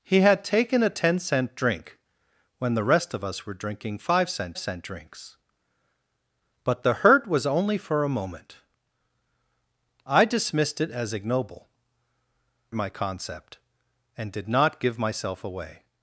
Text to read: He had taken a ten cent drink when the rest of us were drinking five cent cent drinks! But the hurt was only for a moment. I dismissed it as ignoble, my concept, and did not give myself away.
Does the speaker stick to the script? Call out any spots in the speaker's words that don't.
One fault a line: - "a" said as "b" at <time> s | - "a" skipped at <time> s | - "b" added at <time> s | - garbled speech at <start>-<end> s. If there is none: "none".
none